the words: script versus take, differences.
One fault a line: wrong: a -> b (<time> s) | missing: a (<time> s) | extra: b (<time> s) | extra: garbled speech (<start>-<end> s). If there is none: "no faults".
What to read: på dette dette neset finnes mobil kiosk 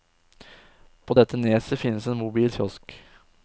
missing: dette (1.4 s)
extra: en (2.1 s)